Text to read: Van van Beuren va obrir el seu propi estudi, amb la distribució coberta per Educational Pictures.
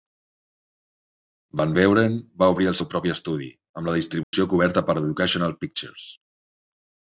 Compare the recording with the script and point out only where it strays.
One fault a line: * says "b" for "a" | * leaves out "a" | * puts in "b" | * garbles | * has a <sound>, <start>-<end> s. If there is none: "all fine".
* leaves out "van"
* has a dropout, 4.2-4.3 s